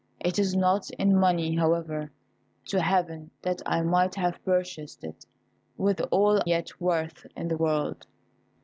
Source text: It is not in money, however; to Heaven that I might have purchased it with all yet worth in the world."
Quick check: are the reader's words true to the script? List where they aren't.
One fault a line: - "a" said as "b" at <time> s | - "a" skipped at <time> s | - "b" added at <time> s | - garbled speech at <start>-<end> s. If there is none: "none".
none